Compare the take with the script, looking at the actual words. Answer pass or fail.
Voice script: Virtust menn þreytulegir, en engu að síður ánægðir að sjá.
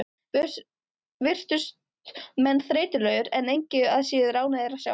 pass